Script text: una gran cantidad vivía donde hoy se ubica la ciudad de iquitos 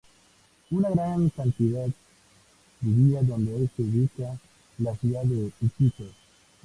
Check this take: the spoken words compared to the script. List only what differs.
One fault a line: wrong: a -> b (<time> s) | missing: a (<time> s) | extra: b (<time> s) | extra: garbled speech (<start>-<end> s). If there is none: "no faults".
no faults